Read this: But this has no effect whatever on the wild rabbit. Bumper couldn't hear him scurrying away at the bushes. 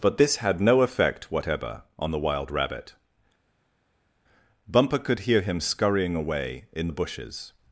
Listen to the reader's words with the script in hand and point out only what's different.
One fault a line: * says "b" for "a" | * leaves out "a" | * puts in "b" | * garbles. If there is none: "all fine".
* says "had" for "has"
* says "could" for "couldn't"
* says "in" for "at"